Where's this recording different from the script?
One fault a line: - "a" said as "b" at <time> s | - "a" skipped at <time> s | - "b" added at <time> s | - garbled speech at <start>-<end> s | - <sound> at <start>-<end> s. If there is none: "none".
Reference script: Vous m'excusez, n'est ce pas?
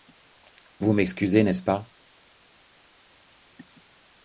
none